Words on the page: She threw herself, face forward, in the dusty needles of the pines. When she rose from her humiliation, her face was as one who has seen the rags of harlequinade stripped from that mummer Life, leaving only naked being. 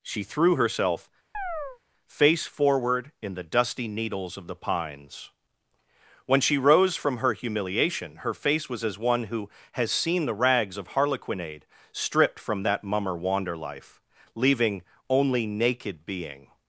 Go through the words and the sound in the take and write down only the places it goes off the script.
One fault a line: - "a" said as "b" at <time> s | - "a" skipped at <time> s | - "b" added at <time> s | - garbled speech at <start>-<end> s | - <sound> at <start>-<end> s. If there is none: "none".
- chirp at 1.3-1.8 s
- "wander" added at 13.1 s